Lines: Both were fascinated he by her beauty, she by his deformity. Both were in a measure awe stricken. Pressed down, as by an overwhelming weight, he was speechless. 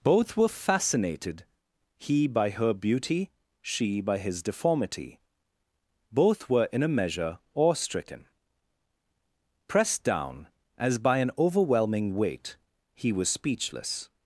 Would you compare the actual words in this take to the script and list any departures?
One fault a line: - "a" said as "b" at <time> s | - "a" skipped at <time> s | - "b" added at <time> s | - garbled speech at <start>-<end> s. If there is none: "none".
none